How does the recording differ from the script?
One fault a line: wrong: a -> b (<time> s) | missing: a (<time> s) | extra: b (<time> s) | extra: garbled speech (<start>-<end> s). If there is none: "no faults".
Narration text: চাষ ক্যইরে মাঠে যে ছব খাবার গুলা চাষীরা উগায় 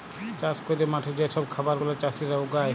no faults